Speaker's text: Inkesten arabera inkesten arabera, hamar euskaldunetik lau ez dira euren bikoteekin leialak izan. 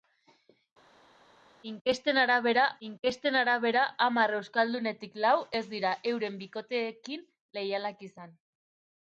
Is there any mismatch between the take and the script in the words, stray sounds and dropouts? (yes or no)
no